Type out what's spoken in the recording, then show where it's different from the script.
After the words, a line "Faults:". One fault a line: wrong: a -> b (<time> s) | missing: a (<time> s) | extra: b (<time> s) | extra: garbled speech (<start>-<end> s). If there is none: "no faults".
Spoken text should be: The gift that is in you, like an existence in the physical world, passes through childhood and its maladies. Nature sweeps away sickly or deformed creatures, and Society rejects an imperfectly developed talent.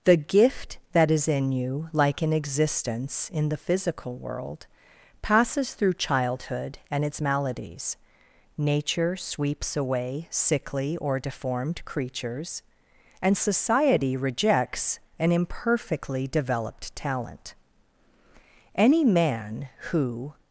The gift that is in you, like an existence in the physical world, passes through childhood and its maladies. Nature sweeps away sickly or deformed creatures, and Society rejects an imperfectly developed talent. Any man who
Faults:
extra: Any man who (18.7 s)